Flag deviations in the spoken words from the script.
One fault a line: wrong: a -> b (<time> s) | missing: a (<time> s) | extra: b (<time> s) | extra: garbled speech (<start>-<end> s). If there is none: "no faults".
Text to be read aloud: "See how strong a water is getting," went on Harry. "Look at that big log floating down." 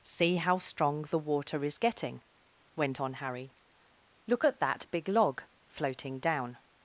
wrong: a -> the (1.0 s)